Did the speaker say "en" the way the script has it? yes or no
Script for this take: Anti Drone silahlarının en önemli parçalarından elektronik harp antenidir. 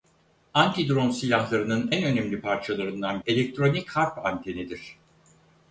yes